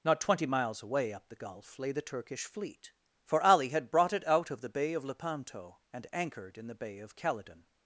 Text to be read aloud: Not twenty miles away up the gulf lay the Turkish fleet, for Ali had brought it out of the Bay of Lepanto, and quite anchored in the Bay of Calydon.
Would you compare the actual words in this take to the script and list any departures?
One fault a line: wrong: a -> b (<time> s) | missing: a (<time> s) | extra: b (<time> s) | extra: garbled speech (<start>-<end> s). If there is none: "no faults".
missing: quite (6.1 s)